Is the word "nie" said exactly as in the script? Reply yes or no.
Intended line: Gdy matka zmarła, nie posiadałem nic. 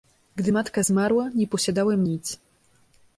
yes